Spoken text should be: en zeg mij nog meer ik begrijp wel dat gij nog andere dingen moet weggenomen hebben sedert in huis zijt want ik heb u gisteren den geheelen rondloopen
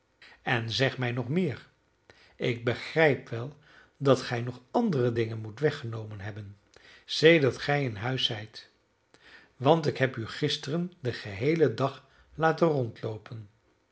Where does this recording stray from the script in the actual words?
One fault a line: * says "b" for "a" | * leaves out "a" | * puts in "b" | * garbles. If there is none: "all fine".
* puts in "gij"
* puts in "dag laten"